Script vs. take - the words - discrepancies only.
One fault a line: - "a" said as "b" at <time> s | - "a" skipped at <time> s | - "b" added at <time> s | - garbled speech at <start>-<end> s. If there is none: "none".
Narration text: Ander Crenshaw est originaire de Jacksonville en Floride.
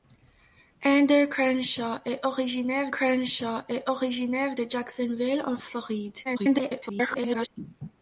- "Crenshaw est originaire" added at 2.9 s
- garbled speech at 6.2-7.5 s